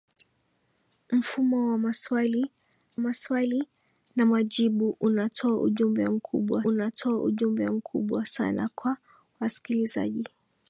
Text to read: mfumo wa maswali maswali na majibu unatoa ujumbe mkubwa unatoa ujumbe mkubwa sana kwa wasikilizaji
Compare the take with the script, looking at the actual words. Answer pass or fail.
pass